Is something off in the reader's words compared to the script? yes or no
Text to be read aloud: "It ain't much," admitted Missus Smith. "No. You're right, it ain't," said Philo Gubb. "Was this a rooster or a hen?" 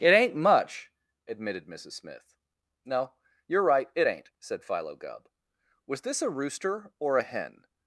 no